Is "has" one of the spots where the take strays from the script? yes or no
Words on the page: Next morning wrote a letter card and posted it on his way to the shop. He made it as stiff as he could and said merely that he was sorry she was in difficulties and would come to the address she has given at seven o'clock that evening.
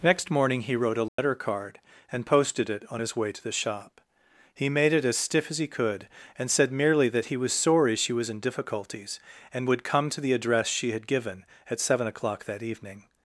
yes